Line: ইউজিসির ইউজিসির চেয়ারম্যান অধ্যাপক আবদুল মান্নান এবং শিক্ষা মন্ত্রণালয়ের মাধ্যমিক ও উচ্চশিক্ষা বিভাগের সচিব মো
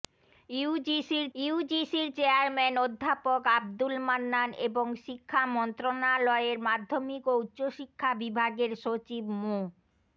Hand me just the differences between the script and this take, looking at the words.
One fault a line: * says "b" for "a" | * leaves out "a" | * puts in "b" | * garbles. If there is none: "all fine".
all fine